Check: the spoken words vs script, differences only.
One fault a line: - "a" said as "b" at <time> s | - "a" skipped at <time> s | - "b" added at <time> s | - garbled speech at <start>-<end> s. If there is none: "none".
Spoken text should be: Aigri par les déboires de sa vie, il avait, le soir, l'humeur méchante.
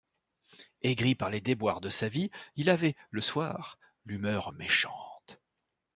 none